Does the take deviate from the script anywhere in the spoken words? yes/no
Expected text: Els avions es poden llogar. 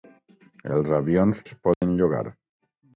no